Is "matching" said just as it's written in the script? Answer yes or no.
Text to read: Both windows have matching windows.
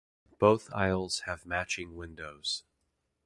yes